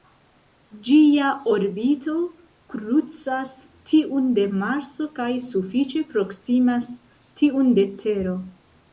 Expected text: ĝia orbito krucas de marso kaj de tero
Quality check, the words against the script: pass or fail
fail